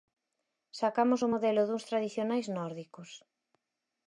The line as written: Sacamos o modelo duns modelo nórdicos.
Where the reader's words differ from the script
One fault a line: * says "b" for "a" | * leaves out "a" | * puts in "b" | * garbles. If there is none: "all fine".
* says "tradicionais" for "modelo"